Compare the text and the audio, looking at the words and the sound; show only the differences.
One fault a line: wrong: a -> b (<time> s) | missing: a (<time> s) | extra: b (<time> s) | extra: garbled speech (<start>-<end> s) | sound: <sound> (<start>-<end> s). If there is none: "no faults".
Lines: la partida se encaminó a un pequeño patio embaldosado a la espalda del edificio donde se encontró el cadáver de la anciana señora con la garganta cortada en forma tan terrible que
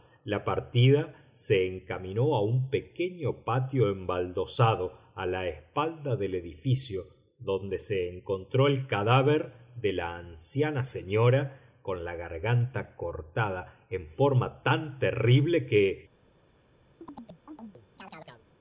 sound: chirp (17.0-18.5 s)